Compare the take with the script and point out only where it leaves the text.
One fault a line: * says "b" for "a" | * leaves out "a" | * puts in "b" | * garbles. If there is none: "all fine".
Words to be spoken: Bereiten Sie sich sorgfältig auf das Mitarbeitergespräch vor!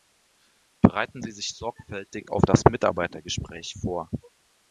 all fine